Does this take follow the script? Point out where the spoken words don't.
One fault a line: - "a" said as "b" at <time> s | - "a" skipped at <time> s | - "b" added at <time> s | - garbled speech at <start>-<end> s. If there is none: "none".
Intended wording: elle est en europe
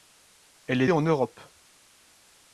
none